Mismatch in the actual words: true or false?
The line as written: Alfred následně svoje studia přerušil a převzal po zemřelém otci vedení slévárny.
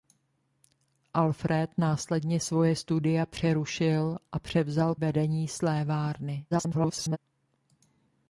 true